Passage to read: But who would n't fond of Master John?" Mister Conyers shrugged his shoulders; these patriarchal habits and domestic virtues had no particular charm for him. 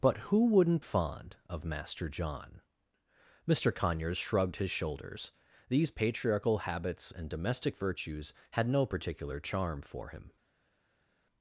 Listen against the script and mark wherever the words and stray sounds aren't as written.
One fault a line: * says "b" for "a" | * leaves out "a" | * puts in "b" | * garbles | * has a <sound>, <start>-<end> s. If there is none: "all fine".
all fine